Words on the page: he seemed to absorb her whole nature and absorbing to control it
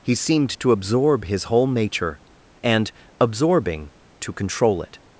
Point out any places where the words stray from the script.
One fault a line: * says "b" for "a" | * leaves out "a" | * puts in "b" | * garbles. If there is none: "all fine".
* says "his" for "her"